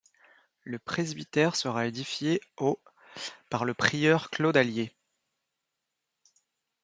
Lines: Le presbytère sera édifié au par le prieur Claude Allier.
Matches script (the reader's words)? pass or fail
pass